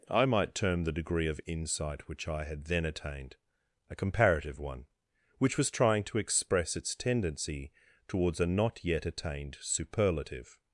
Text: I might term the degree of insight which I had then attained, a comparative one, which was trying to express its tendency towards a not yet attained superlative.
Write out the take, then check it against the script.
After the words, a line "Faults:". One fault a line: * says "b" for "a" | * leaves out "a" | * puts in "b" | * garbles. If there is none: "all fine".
I might term the degree of insight which I had then attained, a comparative one, which was trying to express its tendency towards a not yet attained superlative.
Faults:
all fine